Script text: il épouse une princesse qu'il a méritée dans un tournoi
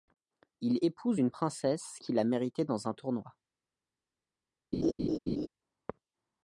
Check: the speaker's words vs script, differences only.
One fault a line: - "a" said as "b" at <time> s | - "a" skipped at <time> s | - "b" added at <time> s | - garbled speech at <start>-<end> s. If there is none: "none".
none